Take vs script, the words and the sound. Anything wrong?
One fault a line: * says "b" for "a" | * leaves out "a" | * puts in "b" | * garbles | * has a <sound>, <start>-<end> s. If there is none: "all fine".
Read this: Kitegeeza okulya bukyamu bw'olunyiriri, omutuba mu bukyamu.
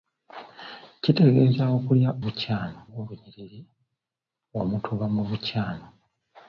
all fine